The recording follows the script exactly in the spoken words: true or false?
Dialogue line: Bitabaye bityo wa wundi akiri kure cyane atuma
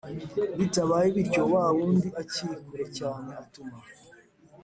true